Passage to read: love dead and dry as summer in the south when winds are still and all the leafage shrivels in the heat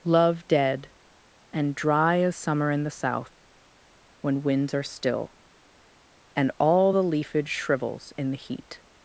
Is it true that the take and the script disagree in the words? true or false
false